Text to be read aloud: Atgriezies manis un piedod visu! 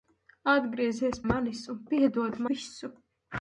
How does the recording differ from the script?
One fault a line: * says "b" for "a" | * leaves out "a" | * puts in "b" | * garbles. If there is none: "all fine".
all fine